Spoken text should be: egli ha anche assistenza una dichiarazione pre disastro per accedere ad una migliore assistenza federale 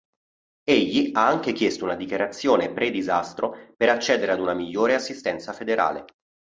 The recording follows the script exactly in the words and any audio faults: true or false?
false